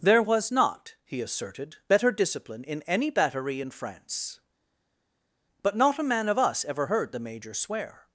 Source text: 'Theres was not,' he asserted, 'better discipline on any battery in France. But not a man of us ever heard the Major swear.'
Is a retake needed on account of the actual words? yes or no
yes